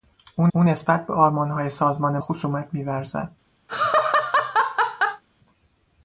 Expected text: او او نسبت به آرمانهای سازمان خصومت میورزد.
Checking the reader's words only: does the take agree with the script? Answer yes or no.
yes